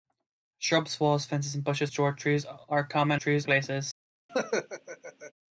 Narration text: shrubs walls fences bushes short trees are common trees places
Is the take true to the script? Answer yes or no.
yes